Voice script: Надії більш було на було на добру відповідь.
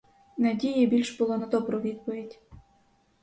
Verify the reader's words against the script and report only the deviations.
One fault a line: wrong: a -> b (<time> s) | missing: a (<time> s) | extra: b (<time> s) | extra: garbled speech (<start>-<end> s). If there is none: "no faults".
missing: було на (1.4 s)